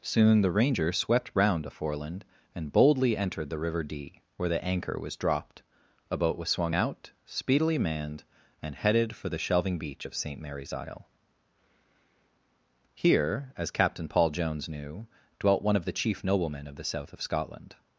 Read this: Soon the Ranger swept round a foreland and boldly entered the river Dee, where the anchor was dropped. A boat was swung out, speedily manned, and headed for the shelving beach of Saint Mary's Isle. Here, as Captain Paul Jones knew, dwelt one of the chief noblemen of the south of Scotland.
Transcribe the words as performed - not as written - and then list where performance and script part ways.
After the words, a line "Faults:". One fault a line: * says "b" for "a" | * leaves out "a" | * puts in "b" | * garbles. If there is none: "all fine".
Soon the Ranger swept round a foreland and boldly entered the river Dee, where the anchor was dropped. A boat was swung out, speedily manned, and headed for the shelving beach of Saint Mary's Isle. Here, as Captain Paul Jones knew, dwelt one of the chief noblemen of the south of Scotland.
Faults:
all fine